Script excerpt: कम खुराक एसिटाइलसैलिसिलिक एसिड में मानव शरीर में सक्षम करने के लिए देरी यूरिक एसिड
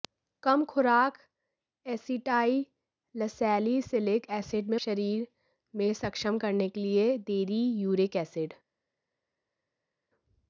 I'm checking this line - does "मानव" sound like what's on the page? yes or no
no